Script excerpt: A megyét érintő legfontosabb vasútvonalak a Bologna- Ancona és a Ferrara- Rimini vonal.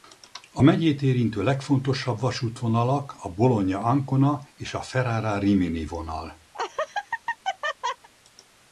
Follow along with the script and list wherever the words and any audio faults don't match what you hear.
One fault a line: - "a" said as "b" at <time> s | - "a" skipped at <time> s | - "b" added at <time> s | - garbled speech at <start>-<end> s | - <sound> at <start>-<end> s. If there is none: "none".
- laugh at 6.5-8.1 s